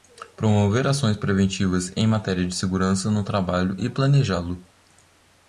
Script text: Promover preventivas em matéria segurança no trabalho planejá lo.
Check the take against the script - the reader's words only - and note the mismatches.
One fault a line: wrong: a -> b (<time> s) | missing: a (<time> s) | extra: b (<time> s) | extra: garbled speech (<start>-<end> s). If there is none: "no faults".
extra: ações (0.9 s)
extra: de (2.4 s)
extra: e (3.8 s)